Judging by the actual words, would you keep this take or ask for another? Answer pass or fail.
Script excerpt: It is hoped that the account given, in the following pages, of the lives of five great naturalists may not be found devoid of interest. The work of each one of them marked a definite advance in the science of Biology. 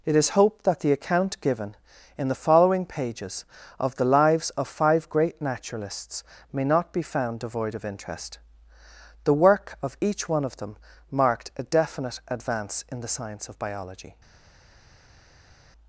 pass